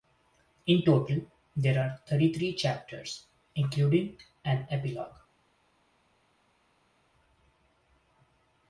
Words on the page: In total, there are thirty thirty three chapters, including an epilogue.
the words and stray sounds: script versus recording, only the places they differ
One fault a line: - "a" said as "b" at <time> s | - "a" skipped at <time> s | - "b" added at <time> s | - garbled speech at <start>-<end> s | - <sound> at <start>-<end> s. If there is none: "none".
- "thirty" skipped at 2.3 s